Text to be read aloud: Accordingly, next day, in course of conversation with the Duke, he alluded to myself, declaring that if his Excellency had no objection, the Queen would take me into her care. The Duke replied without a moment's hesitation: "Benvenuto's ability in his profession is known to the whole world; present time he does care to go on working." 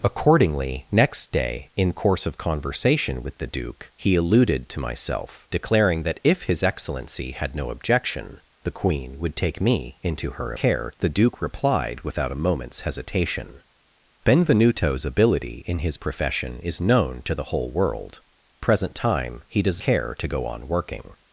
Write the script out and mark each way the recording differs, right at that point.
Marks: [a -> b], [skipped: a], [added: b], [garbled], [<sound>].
Accordingly, next day, in course of conversation with the Duke, he alluded to myself, declaring that if his Excellency had no objection, the Queen would take me into her care. The Duke replied without a moment's hesitation: "Benvenuto's ability in his profession is known to the whole world; present time he does care to go on working."